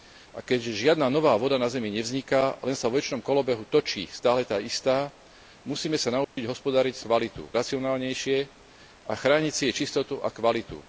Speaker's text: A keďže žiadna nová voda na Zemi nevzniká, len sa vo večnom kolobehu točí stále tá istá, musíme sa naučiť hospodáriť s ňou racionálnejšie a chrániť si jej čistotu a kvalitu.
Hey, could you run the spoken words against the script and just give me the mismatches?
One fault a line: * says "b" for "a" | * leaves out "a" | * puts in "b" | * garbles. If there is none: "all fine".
* says "kvalitu" for "ňou"